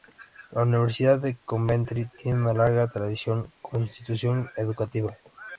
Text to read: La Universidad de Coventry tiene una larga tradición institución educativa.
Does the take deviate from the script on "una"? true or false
false